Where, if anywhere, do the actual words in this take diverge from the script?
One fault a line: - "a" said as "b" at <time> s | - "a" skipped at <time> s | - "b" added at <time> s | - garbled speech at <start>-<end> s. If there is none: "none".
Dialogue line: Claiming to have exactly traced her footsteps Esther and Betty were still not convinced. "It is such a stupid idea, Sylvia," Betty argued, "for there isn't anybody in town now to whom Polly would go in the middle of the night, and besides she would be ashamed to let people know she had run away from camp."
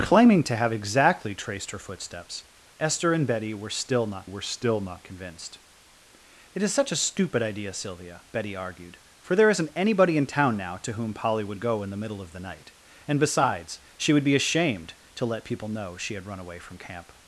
- "were still not" added at 4.2 s